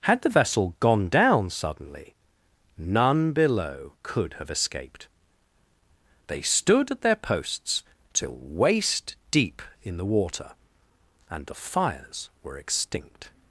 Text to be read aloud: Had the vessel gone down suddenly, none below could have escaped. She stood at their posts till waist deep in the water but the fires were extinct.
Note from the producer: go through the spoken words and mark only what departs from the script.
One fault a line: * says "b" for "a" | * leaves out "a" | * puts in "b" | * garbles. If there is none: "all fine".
* says "They" for "She"
* says "and" for "but"